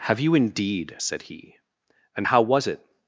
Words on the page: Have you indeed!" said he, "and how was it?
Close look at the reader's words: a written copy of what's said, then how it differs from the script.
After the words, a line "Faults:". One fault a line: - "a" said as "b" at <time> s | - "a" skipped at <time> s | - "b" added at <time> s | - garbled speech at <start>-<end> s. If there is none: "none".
Have you indeed!" said he, "and how was it?
Faults:
none